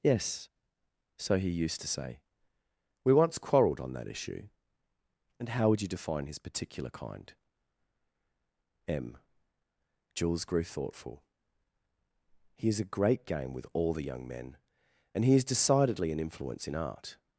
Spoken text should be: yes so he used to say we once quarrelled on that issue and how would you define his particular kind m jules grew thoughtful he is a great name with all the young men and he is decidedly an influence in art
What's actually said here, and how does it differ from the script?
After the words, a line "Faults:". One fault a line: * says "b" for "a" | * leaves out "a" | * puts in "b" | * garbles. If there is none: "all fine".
yes so he used to say we once quarrelled on that issue and how would you define his particular kind m jules grew thoughtful he is a great game with all the young men and he is decidedly an influence in art
Faults:
* says "game" for "name"